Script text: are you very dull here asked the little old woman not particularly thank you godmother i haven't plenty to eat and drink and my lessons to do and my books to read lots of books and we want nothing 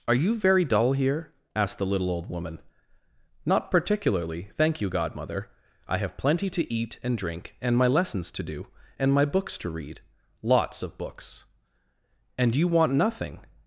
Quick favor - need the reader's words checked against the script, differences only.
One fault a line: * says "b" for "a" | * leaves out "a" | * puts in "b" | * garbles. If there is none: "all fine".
* says "have" for "haven't"
* says "you" for "we"